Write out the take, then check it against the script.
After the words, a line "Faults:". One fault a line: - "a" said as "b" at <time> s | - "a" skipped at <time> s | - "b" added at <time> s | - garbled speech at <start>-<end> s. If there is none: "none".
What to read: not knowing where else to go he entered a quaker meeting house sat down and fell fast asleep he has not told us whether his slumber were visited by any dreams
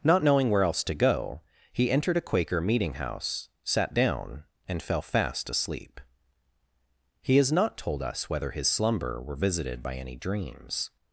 not knowing where else to go he entered a quaker meeting house sat down and fell fast asleep he has not told us whether his slumber were visited by any dreams
Faults:
none